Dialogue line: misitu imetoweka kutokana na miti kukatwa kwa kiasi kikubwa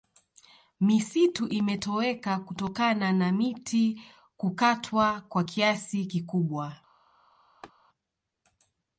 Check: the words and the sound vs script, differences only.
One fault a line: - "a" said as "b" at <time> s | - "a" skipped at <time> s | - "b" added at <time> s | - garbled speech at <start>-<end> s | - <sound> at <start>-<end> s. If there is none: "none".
- laugh at 7.6-7.7 s